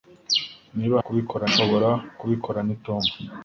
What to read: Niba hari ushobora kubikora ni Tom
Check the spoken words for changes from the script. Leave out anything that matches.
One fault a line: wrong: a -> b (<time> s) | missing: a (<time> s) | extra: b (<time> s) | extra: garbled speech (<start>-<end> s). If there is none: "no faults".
wrong: hari -> kubikora (1.0 s)